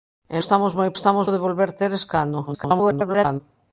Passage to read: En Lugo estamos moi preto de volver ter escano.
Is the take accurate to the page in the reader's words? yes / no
no